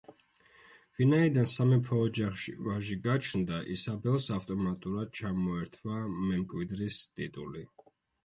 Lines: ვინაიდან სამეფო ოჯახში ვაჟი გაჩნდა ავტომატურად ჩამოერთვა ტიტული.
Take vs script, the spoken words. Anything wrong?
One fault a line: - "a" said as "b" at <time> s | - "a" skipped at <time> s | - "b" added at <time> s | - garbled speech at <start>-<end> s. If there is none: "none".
- "ისაბელს" added at 3.8 s
- "მემკვიდრის" added at 6.3 s